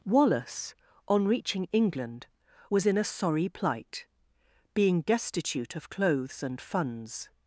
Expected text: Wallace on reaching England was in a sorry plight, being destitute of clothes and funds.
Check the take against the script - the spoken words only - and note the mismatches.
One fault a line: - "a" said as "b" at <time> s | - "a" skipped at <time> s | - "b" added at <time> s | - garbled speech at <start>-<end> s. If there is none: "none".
none